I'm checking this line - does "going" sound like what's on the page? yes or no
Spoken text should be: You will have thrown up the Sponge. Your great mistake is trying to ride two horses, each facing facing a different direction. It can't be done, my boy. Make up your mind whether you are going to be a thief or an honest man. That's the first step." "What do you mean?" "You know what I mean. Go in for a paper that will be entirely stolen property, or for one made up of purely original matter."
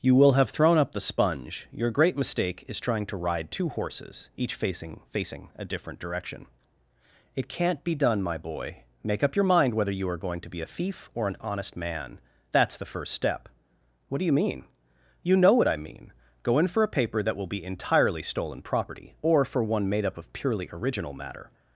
yes